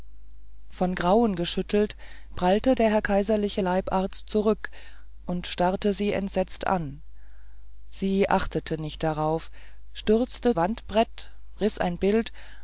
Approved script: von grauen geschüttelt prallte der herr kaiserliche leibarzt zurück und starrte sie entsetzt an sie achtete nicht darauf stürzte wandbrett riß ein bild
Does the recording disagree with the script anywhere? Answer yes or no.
no